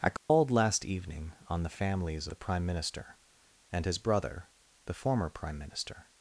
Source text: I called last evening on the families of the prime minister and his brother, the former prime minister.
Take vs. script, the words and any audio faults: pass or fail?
fail